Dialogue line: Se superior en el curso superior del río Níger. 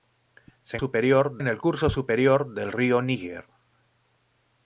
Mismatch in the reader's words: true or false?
false